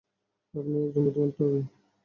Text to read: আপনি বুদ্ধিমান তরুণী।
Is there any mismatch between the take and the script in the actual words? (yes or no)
yes